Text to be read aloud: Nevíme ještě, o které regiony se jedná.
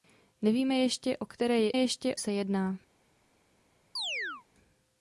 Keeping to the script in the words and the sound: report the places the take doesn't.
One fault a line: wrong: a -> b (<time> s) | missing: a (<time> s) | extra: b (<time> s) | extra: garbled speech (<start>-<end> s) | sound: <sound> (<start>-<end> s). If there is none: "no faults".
wrong: regiony -> ještě (1.7 s)
sound: chirp (4.0-4.4 s)